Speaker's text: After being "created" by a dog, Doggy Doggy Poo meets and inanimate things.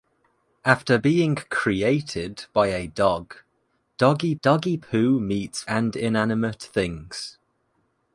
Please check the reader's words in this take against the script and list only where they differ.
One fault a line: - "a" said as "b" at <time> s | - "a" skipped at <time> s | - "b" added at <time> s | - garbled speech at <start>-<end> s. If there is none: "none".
none